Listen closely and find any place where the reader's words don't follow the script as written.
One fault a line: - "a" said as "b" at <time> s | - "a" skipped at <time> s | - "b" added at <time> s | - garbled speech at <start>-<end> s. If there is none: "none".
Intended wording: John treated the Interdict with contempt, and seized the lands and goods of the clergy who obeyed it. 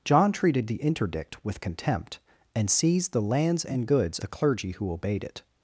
- "of" skipped at 4.2 s